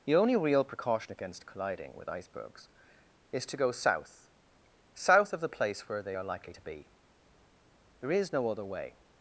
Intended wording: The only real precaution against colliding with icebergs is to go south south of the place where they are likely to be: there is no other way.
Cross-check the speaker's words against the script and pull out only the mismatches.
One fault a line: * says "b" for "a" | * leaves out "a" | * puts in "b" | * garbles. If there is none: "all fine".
all fine